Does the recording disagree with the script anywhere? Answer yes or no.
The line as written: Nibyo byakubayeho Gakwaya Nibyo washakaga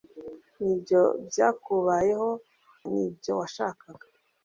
yes